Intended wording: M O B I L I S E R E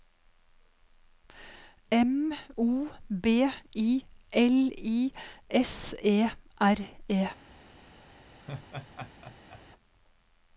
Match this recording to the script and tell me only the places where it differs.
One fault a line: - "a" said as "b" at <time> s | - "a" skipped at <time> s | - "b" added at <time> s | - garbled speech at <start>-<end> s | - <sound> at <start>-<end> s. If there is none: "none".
- laugh at 8.4-9.6 s